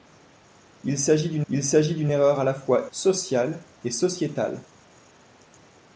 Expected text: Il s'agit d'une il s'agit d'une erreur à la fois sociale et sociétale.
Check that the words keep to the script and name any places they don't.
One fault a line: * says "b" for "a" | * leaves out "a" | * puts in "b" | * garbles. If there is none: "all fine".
all fine